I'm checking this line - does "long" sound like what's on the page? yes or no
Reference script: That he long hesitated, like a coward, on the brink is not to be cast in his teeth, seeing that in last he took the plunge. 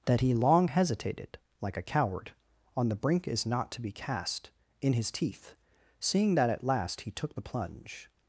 yes